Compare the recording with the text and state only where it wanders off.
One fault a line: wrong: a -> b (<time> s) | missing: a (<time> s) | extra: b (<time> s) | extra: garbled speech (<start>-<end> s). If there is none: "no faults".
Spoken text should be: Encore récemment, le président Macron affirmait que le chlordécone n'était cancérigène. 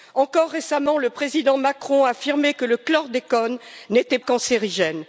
no faults